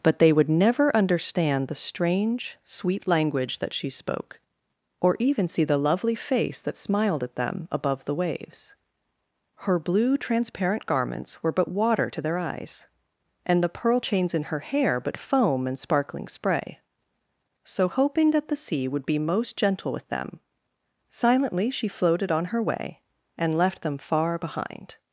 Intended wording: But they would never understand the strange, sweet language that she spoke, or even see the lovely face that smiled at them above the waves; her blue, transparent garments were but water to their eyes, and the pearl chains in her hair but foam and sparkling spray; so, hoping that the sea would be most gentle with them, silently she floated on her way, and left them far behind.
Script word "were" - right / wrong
right